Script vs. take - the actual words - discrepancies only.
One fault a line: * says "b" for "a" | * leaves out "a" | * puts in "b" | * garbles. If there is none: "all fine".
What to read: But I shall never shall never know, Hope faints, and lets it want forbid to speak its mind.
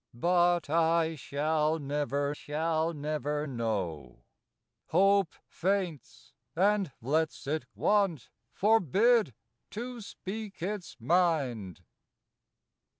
all fine